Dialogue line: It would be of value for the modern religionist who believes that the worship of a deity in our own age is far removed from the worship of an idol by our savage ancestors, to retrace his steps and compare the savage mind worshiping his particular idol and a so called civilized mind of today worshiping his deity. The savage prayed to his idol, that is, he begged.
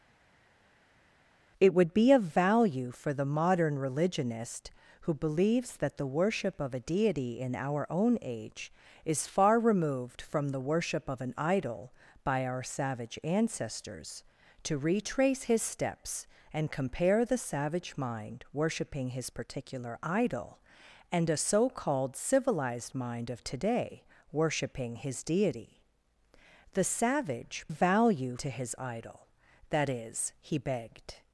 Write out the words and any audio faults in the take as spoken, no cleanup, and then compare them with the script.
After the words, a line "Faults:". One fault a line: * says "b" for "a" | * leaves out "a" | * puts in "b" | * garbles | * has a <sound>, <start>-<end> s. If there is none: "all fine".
It would be of value for the modern religionist who believes that the worship of a deity in our own age is far removed from the worship of an idol by our savage ancestors, to retrace his steps and compare the savage mind worshiping his particular idol and a so called civilized mind of today worshiping his deity. The savage value to his idol, that is, he begged.
Faults:
* says "value" for "prayed"